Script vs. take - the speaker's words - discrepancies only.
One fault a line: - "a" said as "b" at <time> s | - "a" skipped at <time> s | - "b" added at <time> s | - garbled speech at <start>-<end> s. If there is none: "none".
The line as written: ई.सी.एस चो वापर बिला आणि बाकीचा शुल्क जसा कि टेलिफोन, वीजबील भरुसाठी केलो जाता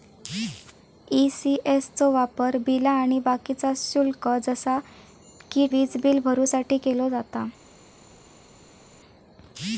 - "टेलिफोन" skipped at 5.7 s